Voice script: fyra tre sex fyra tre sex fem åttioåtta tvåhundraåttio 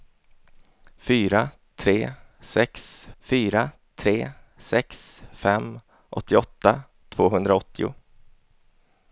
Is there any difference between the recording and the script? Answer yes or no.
no